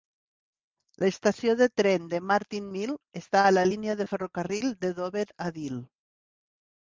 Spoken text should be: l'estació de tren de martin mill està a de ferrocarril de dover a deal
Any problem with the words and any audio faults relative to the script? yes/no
yes